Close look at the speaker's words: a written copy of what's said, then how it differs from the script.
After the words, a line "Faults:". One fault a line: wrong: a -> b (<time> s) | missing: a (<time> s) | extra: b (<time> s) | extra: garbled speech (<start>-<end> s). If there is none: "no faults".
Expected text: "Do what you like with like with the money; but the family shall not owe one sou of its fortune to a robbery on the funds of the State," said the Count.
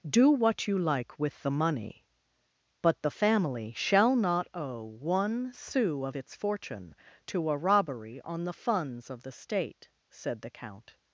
"Do what you like with the money; but the family shall not owe one sou of its fortune to a robbery on the funds of the State," said the Count.
Faults:
missing: like with (1.4 s)